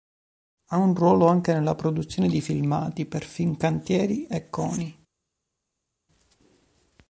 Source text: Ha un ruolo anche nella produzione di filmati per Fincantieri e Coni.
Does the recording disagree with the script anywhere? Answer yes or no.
no